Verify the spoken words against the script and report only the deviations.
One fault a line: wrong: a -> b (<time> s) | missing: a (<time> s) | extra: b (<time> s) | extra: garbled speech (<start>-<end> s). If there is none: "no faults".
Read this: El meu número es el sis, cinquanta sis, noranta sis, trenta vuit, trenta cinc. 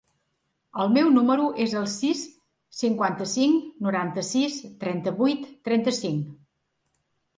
wrong: sis -> cinc (3.4 s)